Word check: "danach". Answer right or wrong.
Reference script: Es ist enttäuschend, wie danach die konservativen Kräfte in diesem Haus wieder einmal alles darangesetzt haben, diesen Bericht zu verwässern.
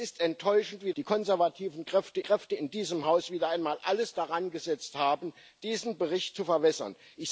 wrong